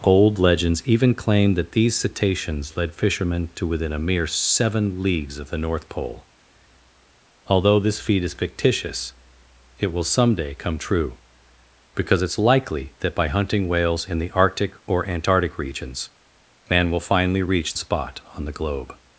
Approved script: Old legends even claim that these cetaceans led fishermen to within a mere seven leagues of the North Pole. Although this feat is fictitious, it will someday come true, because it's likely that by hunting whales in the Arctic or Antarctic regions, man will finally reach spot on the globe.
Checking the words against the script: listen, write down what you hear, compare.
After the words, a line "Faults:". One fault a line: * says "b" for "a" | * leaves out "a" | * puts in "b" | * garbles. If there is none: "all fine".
Old legends even claim that these cetaceans led fishermen to within a mere seven leagues of the North Pole. Although this feat is fictitious, it will someday come true, because it's likely that by hunting whales in the Arctic or Antarctic regions, man will finally reach spot on the globe.
Faults:
all fine